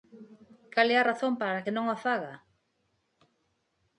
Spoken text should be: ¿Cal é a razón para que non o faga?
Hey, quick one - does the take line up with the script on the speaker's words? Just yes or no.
yes